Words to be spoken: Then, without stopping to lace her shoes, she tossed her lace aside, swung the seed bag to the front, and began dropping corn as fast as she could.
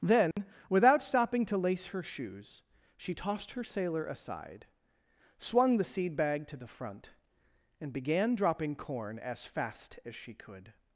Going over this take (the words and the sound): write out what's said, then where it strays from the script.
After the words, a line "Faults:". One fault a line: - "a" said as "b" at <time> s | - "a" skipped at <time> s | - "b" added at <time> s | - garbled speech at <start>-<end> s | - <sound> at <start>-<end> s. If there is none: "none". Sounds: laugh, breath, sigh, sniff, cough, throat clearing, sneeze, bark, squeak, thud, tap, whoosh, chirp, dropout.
Then, without stopping to lace her shoes, she tossed her sailor aside, swung the seed bag to the front, and began dropping corn as fast as she could.
Faults:
- dropout at 0.3-0.4 s
- "lace" said as "sailor" at 3.6 s